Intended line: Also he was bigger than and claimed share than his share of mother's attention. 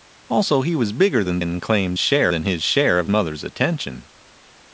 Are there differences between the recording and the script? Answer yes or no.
no